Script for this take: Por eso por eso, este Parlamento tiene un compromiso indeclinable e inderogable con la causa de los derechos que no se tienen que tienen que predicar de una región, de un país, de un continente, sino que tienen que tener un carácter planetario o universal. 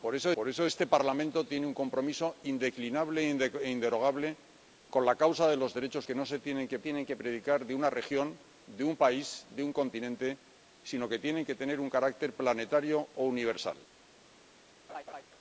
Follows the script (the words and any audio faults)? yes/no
no